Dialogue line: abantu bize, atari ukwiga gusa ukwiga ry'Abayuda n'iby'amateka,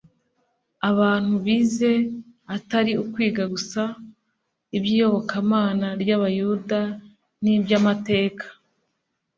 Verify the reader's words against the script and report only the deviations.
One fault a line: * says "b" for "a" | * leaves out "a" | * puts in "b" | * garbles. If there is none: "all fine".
* says "iby'iyobokamana" for "ukwiga"